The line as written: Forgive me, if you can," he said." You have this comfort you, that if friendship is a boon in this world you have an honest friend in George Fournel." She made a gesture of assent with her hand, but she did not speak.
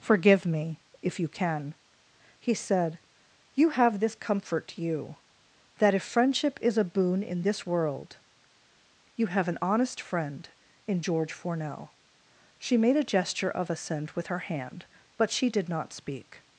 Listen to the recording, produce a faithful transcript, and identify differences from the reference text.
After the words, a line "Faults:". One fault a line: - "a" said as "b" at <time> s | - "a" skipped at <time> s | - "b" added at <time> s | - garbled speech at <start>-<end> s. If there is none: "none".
Forgive me, if you can," he said." You have this comfort you, that if friendship is a boon in this world you have an honest friend in George Fournel." She made a gesture of assent with her hand, but she did not speak.
Faults:
none